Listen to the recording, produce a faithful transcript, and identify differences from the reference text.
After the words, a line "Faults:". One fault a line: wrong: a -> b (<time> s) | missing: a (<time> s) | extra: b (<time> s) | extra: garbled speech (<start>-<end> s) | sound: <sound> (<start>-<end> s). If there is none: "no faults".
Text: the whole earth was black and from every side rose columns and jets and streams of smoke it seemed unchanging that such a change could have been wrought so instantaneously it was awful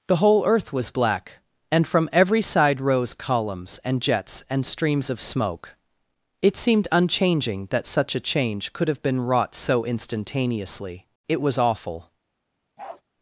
the whole earth was black and from every side rose columns and jets and streams of smoke it seemed unchanging that such a change could have been wrought so instantaneously it was awful
Faults:
sound: bark (12.8-13.0 s)